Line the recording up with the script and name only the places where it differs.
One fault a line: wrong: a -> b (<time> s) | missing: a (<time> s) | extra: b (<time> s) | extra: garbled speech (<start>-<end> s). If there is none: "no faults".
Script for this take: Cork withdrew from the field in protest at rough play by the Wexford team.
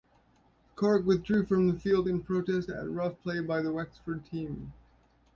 no faults